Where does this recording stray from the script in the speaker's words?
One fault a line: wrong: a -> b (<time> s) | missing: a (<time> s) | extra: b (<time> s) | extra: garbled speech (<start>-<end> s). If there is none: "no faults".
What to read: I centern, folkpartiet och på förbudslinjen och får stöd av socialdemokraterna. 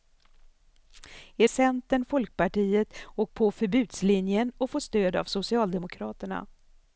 no faults